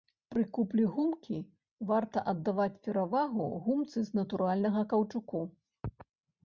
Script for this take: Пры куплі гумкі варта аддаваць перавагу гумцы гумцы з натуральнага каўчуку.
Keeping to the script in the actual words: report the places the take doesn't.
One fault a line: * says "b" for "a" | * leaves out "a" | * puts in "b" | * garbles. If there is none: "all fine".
* leaves out "гумцы"